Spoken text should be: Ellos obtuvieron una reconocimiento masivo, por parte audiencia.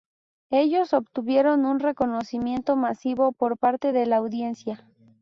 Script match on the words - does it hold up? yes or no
no